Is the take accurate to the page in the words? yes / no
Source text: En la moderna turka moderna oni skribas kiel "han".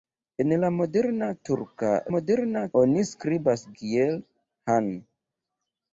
yes